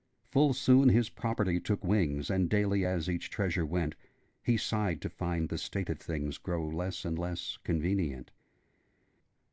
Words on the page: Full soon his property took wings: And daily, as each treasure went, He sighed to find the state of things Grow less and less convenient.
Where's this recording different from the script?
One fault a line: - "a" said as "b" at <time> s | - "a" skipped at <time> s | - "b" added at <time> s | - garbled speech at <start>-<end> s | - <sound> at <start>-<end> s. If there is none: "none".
none